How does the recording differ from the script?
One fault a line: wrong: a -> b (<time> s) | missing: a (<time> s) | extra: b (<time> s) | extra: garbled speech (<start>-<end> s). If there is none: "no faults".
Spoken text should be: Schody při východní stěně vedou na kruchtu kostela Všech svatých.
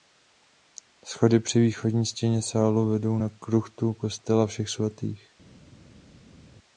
extra: sálu (2.4 s)